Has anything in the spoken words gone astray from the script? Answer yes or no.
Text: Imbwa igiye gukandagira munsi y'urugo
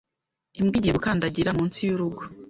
no